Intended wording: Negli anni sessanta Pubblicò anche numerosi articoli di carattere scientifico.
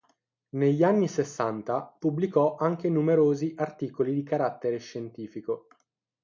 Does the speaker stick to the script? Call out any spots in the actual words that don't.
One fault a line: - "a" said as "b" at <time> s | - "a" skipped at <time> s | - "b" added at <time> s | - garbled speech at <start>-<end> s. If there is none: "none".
none